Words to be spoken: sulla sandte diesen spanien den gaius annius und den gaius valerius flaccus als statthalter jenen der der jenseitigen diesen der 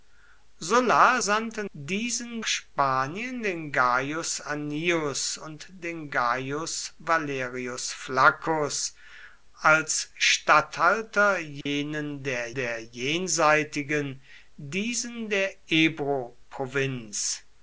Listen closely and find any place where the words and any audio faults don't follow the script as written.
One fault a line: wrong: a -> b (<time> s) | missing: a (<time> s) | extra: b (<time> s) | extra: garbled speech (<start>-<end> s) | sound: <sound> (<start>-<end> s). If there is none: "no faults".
sound: dropout (11.6-11.7 s)